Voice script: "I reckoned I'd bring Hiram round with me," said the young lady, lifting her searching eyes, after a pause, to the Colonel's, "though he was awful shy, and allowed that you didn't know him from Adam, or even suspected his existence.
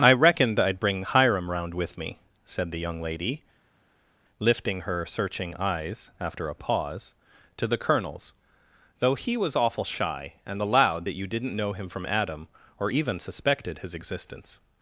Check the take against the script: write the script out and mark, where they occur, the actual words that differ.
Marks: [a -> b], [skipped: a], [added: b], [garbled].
"I reckoned I'd bring Hiram round with me," said the young lady, lifting her searching eyes, after a pause, to the Colonel's, "though he was awful shy, and allowed that you didn't know him from Adam, or even suspected his existence.